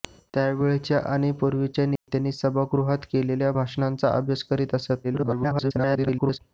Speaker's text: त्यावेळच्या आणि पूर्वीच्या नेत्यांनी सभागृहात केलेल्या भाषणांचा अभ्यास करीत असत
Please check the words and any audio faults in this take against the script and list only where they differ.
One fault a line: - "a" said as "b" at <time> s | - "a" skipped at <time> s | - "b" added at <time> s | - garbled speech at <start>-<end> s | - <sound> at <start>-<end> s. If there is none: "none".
- dropout at 2.0-2.1 s
- garbled speech at 5.0-6.4 s